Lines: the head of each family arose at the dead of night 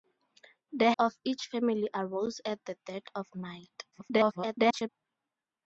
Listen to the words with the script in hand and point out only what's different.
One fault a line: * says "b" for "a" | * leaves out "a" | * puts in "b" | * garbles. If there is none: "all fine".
* leaves out "head"
* garbles